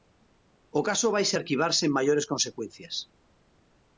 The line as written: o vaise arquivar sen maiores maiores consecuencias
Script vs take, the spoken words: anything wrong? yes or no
yes